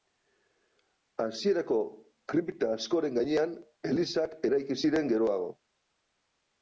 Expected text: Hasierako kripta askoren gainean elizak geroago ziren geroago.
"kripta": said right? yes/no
yes